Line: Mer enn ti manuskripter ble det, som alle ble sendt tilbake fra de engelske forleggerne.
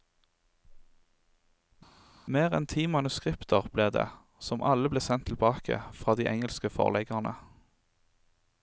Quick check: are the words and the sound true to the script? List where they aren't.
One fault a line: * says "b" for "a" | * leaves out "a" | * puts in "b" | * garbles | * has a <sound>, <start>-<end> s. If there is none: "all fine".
all fine